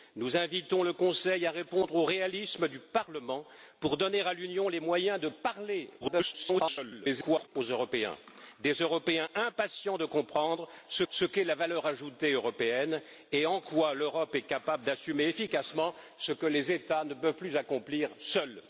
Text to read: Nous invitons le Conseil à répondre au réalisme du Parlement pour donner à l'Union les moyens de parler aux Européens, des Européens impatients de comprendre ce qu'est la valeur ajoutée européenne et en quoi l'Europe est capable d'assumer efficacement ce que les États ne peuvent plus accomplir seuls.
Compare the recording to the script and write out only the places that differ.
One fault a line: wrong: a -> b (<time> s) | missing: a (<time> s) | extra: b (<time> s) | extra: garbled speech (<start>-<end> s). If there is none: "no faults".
extra: garbled speech (6.0-7.5 s)
extra: ce (11.1 s)